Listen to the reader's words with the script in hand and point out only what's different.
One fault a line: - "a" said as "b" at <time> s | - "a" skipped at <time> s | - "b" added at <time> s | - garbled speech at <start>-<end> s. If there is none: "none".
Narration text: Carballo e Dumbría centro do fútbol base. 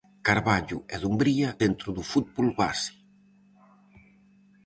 none